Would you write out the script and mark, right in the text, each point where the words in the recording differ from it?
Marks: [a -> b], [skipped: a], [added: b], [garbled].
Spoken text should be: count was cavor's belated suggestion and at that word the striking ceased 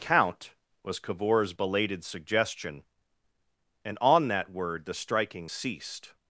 count was cavor's belated suggestion and [at -> on] that word the striking ceased